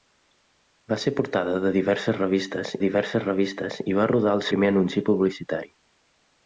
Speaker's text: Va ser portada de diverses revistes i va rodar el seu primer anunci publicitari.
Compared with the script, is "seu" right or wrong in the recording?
wrong